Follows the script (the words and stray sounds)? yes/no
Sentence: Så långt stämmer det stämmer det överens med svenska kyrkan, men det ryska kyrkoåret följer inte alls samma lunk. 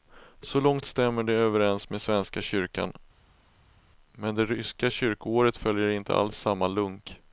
no